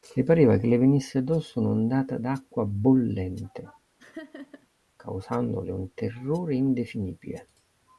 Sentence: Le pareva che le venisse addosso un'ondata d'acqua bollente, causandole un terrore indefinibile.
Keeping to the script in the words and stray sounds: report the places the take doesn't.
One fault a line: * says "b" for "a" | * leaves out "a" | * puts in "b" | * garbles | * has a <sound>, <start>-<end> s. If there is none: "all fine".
* has a laugh, 4.0-4.7 s